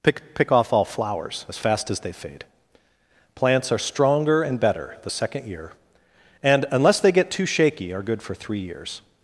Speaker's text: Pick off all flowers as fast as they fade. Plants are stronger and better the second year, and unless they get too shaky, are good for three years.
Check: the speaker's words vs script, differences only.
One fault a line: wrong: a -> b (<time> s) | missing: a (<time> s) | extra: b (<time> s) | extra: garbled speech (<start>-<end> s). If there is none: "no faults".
extra: pick (0.3 s)